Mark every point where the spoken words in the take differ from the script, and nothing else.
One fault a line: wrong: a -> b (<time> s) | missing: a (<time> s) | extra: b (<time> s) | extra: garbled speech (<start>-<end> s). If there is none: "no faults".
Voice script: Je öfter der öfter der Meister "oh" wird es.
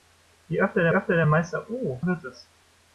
no faults